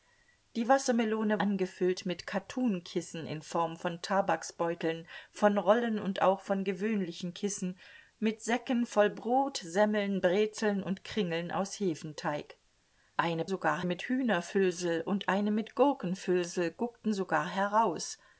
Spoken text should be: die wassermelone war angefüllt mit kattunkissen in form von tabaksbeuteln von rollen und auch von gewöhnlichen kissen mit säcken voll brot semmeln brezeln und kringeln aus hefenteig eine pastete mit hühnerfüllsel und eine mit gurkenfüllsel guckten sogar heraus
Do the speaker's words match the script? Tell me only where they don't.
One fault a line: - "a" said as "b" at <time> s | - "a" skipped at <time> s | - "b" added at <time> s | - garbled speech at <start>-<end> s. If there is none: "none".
- "war" skipped at 1.4 s
- "pastete" said as "sogar" at 13.5 s